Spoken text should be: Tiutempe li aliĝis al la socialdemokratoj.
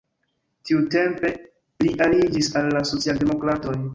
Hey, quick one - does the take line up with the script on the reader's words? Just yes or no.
yes